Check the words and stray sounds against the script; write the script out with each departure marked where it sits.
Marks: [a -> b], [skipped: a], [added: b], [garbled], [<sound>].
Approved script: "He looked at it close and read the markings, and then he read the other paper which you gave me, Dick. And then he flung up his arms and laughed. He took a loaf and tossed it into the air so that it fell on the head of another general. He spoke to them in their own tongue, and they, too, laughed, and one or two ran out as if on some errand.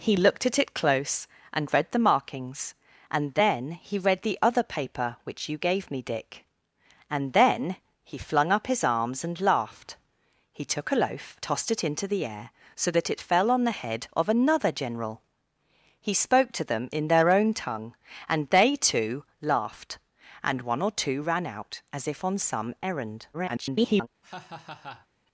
"He looked at it close and read the markings, and then he read the other paper which you gave me, Dick. And then he flung up his arms and laughed. He took a loaf [skipped: and] tossed it into the air so that it fell on the head of another general. He spoke to them in their own tongue, and they, too, laughed, and one or two ran out as if on some errand. [garbled] [laugh]